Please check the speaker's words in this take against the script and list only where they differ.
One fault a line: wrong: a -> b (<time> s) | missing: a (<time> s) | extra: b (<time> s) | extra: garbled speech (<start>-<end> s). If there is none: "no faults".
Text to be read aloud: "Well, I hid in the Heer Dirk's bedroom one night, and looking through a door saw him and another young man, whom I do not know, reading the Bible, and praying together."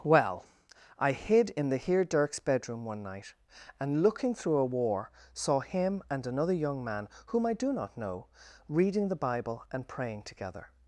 wrong: door -> war (4.6 s)